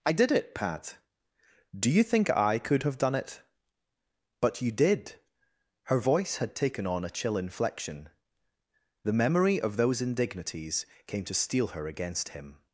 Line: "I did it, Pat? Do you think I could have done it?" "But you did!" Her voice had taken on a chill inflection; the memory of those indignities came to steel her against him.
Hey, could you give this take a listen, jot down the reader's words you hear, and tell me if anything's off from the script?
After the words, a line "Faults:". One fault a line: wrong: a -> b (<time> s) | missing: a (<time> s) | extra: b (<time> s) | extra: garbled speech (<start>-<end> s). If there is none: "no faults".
"I did it, Pat? Do you think I could have done it?" "But you did!" Her voice had taken on a chill inflection; the memory of those indignities came to steel her against him.
Faults:
no faults